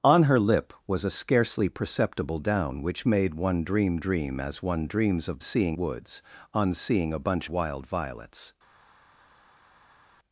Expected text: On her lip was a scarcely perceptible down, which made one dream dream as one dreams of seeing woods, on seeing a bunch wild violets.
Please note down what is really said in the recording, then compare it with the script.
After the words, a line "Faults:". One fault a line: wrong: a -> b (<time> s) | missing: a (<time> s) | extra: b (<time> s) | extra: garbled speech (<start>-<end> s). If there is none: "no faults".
On her lip was a scarcely perceptible down, which made one dream dream as one dreams of seeing woods, on seeing a bunch wild violets.
Faults:
no faults